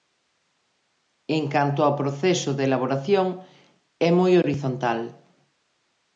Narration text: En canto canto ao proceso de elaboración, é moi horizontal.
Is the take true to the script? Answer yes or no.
no